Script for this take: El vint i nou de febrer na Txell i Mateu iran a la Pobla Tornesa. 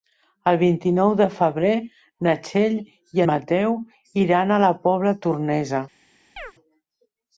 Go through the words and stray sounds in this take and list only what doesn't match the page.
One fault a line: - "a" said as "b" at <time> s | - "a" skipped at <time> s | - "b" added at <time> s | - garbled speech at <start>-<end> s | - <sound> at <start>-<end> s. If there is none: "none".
- chirp at 6.4-6.5 s